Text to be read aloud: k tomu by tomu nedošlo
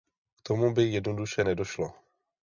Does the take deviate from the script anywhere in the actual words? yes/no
yes